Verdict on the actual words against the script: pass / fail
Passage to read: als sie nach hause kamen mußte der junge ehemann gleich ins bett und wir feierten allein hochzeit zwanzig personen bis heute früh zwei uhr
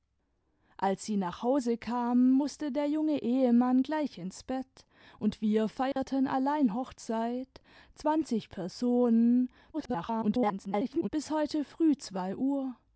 fail